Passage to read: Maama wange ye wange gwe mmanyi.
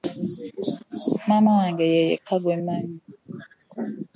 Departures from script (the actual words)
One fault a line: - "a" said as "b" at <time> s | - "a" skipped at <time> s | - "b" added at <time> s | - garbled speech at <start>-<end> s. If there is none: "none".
- "wange" said as "yekka" at 2.1 s